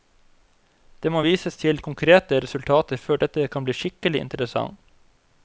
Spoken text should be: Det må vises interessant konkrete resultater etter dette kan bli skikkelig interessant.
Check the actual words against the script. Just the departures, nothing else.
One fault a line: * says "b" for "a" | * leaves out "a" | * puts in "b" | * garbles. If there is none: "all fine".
* says "til" for "interessant"
* says "før" for "etter"